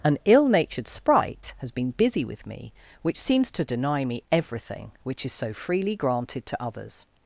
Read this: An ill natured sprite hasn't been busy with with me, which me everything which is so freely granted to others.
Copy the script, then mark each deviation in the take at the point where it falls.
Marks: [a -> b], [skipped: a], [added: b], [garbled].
An ill natured sprite [hasn't -> has] been busy with [skipped: with] me, which [added: seems to deny] me everything which is so freely granted to others.